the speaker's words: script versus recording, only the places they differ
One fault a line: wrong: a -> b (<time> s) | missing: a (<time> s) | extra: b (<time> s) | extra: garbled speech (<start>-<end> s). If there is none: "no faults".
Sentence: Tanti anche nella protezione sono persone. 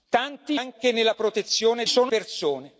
no faults